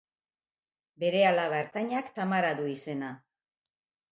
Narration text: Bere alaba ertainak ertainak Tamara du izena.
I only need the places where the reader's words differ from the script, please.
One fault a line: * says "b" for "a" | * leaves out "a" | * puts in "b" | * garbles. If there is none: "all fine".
* leaves out "ertainak"